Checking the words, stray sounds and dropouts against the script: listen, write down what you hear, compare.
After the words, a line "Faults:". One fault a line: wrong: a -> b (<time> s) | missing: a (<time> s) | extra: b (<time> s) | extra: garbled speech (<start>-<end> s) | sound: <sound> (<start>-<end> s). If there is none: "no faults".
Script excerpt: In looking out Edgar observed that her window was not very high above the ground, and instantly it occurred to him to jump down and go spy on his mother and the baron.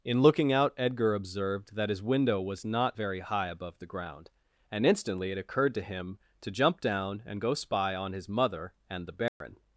In looking out Edgar observed that his window was not very high above the ground, and instantly it occurred to him to jump down and go spy on his mother and the baron.
Faults:
wrong: her -> his (1.9 s)
sound: dropout (9.3-9.4 s)